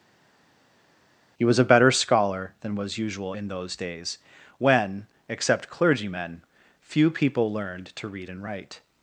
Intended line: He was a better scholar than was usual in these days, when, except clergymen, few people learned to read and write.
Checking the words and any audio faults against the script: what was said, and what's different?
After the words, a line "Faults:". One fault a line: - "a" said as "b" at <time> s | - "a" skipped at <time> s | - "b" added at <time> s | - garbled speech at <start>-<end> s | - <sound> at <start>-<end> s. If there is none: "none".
He was a better scholar than was usual in those days, when, except clergymen, few people learned to read and write.
Faults:
- "these" said as "those" at 3.5 s